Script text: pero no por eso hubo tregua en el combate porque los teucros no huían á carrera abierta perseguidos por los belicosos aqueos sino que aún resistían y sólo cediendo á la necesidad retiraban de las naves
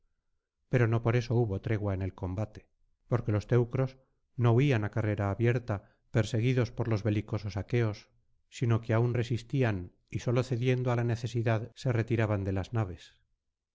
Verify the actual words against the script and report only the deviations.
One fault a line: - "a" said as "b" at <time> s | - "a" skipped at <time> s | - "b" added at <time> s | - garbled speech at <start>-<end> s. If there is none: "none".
- "se" added at 11.7 s